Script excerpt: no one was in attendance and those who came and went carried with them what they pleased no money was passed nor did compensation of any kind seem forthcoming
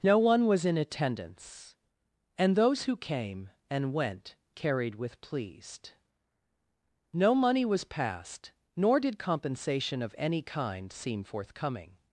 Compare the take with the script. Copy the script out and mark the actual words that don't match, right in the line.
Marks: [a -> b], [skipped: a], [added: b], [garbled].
no one was in attendance and those who came and went carried with [skipped: them what they] pleased no money was passed nor did compensation of any kind seem forthcoming